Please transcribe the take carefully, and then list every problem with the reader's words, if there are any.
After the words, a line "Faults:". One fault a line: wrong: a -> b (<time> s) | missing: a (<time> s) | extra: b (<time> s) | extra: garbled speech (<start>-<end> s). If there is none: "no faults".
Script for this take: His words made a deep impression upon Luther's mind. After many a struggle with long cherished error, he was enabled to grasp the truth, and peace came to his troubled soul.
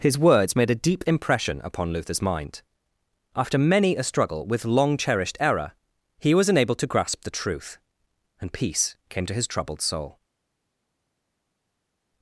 His words made a deep impression upon Luther's mind. After many a struggle with long cherished error, he was enabled to grasp the truth, and peace came to his troubled soul.
Faults:
no faults